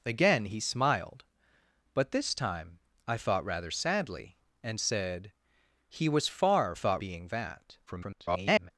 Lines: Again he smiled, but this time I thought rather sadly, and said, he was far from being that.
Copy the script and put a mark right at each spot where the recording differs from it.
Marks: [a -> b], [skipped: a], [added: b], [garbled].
Again he smiled, but this time I thought rather sadly, and said, he was far [from -> thought] being that. [garbled]